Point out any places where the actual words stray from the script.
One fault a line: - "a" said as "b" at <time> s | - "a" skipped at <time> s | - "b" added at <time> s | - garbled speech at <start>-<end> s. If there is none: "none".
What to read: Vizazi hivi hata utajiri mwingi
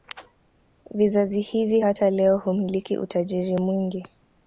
- "leo humiliki" added at 2.1 s